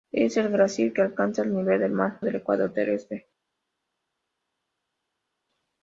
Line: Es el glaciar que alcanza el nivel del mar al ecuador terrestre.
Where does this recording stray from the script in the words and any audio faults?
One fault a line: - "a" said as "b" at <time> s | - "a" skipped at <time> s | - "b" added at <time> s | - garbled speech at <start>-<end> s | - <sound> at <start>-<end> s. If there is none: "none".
none